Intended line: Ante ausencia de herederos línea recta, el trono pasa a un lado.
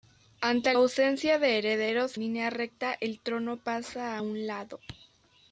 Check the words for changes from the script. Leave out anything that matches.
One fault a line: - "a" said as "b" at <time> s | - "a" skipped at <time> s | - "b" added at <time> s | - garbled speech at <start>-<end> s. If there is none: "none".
none